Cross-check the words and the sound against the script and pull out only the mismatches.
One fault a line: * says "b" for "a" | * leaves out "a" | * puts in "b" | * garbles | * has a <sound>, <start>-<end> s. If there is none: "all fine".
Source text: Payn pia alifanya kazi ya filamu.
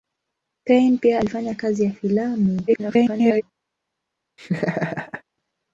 * garbles
* has a laugh, 4.4-5.2 s